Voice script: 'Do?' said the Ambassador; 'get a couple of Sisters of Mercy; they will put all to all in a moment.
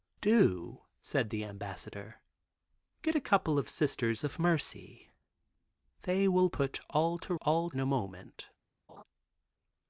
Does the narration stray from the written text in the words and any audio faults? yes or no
yes